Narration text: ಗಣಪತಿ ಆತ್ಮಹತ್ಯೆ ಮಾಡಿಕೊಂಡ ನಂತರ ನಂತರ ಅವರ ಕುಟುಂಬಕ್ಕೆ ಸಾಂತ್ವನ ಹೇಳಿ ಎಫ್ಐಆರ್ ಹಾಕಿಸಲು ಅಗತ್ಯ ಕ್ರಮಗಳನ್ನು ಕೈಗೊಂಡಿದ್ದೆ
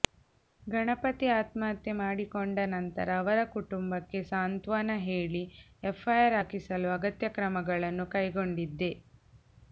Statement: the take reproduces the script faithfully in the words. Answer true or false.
false